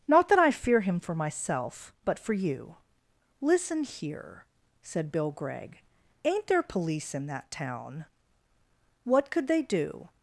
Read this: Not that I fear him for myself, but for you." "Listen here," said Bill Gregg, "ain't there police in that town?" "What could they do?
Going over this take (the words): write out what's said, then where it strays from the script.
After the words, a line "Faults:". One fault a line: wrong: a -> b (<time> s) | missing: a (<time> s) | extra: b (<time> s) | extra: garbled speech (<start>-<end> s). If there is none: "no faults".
Not that I fear him for myself, but for you." "Listen here," said Bill Gregg, "ain't there police in that town?" "What could they do?
Faults:
no faults